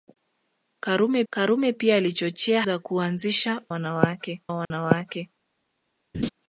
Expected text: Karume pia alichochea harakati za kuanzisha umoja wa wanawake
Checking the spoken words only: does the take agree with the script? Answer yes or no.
no